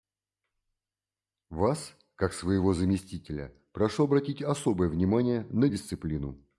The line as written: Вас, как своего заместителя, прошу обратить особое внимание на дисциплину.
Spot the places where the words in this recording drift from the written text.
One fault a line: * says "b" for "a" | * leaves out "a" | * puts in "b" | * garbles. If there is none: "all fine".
all fine